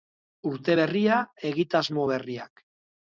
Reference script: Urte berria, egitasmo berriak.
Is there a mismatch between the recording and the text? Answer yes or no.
no